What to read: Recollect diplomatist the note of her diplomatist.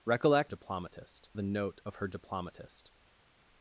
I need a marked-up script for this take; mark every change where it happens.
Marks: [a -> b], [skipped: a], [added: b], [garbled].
Recollect diplomatist the note of her diplomatist.